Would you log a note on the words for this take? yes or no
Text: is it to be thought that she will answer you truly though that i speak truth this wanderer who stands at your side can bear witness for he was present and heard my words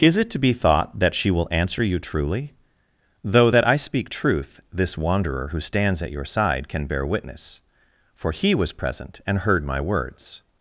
no